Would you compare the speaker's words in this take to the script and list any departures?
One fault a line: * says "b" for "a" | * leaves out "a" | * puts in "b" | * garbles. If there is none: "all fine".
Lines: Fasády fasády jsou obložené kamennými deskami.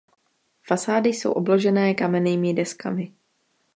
* leaves out "fasády"